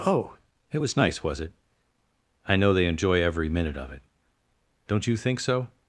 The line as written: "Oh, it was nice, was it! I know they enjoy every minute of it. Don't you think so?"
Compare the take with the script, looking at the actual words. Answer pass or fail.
pass